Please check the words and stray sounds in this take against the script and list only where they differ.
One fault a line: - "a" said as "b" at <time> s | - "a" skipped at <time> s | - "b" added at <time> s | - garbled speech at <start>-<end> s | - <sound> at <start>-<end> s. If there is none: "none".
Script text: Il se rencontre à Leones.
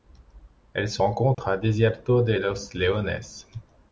- "Il" said as "Elle" at 0.7 s
- dropout at 1.3-1.4 s
- "Desierto de los" added at 1.6 s